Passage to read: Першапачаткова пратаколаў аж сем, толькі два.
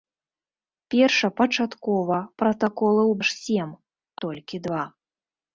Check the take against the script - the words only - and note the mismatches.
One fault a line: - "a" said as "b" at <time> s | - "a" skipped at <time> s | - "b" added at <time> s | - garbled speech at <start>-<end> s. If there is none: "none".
none